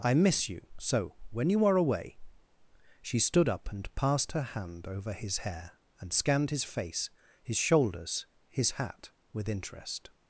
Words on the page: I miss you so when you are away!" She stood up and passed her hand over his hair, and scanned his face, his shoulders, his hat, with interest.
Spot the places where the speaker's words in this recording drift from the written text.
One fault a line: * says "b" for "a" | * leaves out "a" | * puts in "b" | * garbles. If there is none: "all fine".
all fine